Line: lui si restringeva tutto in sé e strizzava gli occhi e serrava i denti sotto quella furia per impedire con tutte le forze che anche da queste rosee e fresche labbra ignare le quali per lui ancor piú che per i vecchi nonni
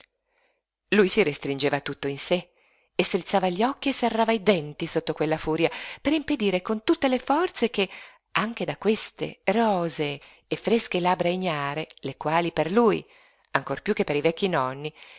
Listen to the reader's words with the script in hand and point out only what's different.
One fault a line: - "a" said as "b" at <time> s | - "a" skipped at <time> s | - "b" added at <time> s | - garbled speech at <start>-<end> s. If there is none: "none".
none